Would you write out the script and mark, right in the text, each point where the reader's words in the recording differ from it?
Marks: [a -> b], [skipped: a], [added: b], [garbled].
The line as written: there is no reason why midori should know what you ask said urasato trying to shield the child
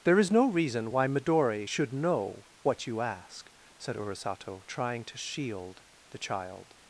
there is no reason why midori should know what you ask said urasato trying to shield the child